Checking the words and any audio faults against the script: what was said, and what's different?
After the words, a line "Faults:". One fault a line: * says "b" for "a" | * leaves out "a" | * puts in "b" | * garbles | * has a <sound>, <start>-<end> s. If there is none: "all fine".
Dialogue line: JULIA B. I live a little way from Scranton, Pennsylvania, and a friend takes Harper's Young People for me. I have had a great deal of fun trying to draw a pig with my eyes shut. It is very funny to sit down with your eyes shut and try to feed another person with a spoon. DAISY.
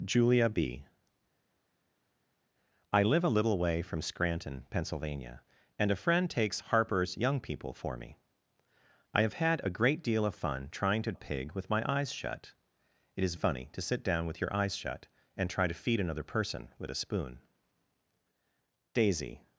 JULIA B. I live a little way from Scranton, Pennsylvania, and a friend takes Harper's Young People for me. I have had a great deal of fun trying to a pig with my eyes shut. It is funny to sit down with your eyes shut and try to feed another person with a spoon. DAISY.
Faults:
* leaves out "draw"
* leaves out "very"